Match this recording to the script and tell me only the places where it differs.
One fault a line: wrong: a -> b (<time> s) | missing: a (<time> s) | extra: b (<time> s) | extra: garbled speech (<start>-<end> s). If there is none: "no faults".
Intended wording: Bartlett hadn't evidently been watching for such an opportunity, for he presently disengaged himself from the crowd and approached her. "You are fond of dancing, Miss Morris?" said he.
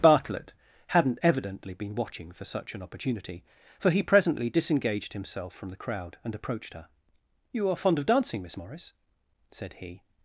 no faults